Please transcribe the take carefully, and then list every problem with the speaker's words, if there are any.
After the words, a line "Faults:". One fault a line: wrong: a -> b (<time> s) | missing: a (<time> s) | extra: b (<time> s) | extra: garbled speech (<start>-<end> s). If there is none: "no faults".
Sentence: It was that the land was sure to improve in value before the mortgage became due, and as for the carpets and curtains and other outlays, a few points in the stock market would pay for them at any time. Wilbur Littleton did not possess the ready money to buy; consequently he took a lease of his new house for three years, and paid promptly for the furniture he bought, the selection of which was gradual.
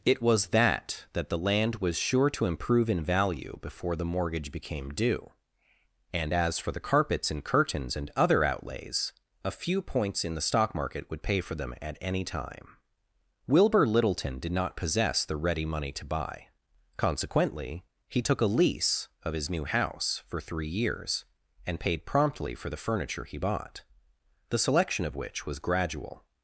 It was that that the land was sure to improve in value before the mortgage became due, and as for the carpets and curtains and other outlays, a few points in the stock market would pay for them at any time. Wilbur Littleton did not possess the ready money to buy; consequently he took a lease of his new house for three years, and paid promptly for the furniture he bought, the selection of which was gradual.
Faults:
extra: that (1.1 s)